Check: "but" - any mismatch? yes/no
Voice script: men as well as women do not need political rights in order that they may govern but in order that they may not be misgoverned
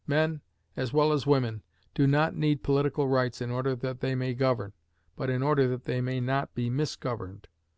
no